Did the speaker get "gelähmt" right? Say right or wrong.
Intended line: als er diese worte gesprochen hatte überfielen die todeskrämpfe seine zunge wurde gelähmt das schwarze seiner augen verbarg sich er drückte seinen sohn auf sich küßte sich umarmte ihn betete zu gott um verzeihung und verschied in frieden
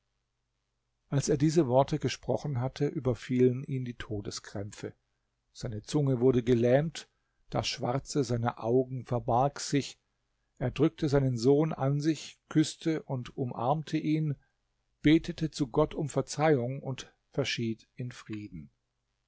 right